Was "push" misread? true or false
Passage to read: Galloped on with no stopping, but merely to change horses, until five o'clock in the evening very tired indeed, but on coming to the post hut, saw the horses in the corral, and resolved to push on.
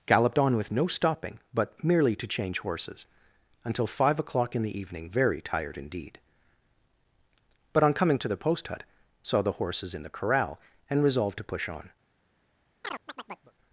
false